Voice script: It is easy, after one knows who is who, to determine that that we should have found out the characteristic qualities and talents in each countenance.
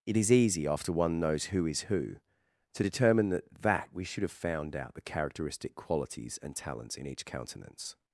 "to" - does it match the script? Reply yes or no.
yes